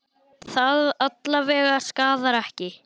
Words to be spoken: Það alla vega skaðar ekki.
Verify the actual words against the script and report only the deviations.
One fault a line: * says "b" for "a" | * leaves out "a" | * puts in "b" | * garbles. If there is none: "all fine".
all fine